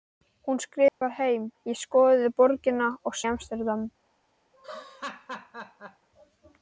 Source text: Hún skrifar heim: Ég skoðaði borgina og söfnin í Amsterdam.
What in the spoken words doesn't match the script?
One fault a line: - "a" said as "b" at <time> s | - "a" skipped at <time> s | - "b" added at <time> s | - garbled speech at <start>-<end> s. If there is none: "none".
- "söfnin" skipped at 3.2 s